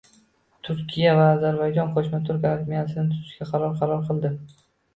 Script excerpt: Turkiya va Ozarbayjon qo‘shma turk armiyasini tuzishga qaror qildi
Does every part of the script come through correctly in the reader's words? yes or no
no